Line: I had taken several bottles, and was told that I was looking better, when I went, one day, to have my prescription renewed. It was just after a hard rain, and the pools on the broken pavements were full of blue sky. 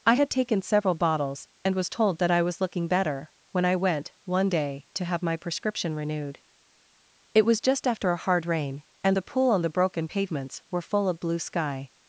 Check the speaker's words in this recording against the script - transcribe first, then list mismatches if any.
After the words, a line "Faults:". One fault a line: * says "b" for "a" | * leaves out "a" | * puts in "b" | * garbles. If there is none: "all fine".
I had taken several bottles, and was told that I was looking better, when I went, one day, to have my prescription renewed. It was just after a hard rain, and the pool on the broken pavements were full of blue sky.
Faults:
* says "pool" for "pools"